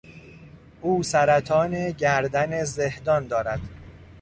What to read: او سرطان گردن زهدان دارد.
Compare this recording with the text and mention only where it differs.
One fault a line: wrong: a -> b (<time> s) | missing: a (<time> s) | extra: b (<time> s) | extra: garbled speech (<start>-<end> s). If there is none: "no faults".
no faults